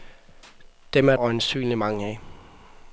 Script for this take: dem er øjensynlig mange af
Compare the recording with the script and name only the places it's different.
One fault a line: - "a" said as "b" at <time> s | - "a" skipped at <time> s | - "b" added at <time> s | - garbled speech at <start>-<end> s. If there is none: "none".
none